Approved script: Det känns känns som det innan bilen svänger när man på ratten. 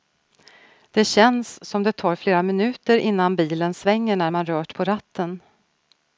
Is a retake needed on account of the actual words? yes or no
yes